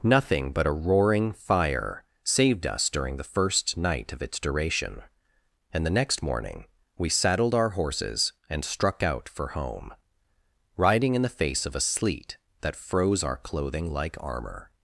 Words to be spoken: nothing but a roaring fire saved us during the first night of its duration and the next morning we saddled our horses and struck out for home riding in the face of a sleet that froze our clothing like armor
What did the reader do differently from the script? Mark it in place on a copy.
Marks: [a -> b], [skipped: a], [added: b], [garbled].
nothing but a roaring fire saved us during the first night of its duration and the next morning we saddled our horses and struck out for home riding in the face of a sleet that froze our clothing like armor